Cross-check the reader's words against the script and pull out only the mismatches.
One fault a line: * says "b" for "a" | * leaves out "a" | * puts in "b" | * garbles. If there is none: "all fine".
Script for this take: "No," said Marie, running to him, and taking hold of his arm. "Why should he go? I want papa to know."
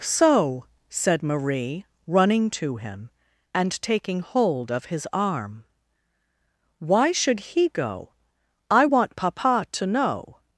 * says "So" for "No"